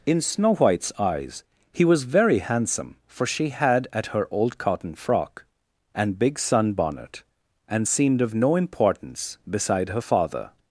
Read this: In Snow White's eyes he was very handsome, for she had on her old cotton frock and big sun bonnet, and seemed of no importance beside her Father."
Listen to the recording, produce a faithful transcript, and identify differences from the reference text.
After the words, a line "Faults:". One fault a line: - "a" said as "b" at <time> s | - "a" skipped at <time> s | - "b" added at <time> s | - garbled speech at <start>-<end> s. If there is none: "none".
In Snow White's eyes he was very handsome, for she had at her old cotton frock and big sun bonnet, and seemed of no importance beside her Father."
Faults:
- "on" said as "at" at 3.9 s